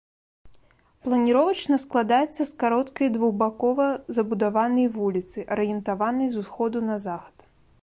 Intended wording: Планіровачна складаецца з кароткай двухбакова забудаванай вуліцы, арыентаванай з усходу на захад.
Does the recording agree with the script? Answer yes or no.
yes